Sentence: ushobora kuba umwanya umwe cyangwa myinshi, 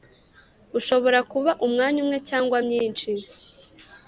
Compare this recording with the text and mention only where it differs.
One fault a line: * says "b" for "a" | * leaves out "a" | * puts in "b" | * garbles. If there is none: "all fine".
all fine